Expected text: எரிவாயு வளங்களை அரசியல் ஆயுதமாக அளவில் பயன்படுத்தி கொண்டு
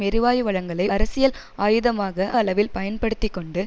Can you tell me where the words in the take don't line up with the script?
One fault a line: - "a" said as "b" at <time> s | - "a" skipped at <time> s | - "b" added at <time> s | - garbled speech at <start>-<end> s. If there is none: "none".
none